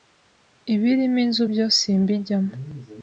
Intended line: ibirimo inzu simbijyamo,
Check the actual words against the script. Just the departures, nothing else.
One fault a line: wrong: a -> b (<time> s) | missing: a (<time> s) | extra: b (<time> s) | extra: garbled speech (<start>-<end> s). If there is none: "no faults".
extra: byo (1.5 s)